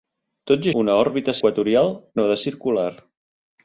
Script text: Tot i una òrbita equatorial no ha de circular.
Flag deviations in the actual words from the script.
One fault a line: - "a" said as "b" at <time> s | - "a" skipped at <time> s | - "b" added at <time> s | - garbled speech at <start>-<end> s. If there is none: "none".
none